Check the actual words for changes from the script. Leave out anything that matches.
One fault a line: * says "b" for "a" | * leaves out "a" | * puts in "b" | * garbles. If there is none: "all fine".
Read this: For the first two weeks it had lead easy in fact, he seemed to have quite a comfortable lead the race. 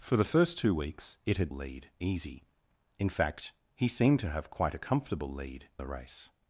all fine